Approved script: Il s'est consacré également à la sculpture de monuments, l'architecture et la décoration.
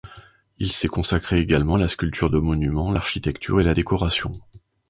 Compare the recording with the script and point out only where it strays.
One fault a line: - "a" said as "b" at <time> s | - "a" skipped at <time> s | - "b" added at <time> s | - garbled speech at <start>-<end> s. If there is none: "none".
none